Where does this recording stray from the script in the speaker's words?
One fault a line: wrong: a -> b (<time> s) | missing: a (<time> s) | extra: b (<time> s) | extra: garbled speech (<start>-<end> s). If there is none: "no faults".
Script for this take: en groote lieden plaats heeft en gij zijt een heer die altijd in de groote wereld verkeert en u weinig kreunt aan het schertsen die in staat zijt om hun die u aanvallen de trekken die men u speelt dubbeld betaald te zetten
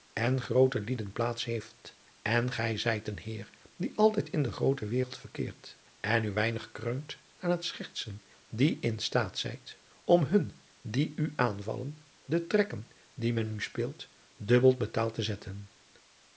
no faults